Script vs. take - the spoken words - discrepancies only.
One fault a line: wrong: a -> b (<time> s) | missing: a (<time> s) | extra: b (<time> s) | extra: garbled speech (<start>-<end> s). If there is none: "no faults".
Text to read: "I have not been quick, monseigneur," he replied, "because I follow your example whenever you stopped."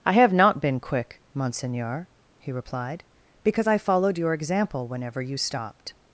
wrong: follow -> followed (3.8 s)